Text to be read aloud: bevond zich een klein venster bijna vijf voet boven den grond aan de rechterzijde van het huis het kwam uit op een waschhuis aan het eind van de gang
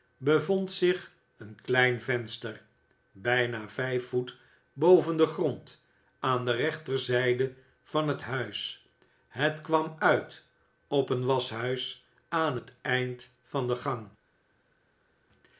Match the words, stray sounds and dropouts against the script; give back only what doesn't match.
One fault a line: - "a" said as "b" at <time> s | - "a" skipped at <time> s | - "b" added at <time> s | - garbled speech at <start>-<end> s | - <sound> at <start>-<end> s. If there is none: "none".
none